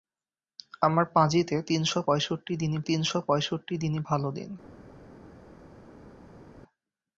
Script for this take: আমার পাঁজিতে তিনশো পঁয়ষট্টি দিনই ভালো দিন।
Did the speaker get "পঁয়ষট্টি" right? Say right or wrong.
right